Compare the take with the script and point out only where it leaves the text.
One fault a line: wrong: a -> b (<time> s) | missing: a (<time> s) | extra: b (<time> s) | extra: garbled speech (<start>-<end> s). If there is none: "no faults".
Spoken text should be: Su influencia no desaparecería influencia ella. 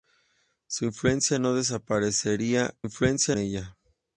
no faults